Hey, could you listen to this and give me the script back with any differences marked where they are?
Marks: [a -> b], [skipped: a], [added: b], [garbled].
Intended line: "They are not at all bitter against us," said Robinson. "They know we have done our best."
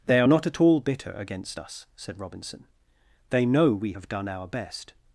"They are not at all bitter against us," said Robinson. "They know we have done our best."